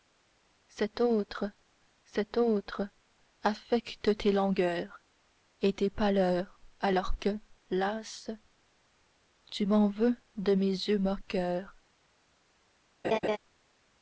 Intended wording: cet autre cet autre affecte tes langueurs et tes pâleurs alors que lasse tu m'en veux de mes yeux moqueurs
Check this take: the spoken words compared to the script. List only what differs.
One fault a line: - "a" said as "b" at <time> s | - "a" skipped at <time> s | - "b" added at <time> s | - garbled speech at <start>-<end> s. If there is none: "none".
none